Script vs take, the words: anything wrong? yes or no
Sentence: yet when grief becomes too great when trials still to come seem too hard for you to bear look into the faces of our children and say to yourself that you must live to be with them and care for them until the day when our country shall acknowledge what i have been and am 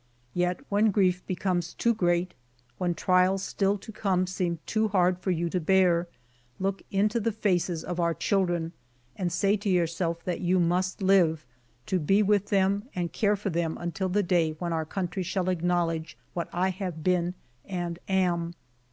no